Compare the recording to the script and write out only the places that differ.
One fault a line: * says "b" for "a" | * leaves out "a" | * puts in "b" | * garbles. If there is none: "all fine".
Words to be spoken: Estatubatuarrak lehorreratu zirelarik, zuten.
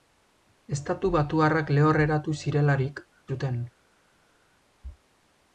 all fine